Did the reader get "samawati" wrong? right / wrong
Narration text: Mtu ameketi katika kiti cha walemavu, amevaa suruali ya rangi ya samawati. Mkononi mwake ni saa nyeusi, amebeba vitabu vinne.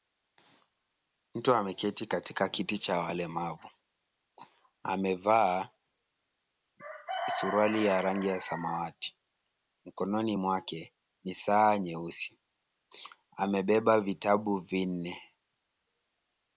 right